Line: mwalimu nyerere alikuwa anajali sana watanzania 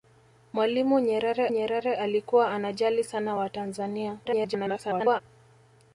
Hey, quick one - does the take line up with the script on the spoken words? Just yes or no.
no